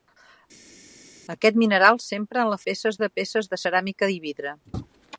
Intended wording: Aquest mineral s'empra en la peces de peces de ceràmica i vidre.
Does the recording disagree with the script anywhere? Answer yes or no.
no